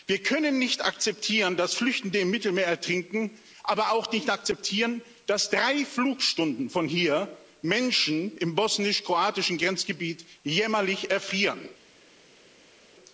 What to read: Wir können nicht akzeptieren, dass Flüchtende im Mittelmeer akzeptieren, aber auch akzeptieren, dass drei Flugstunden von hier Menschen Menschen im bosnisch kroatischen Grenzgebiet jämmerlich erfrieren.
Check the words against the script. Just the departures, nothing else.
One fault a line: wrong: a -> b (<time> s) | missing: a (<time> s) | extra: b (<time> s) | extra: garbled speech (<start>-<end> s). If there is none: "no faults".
wrong: akzeptieren -> ertrinken (2.6 s)
extra: nicht (4.1 s)
missing: Menschen (8.4 s)